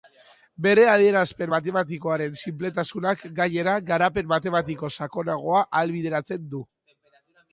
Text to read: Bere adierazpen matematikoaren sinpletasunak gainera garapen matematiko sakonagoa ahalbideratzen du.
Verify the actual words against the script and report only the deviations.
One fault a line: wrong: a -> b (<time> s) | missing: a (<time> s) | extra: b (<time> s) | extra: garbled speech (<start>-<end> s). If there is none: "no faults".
no faults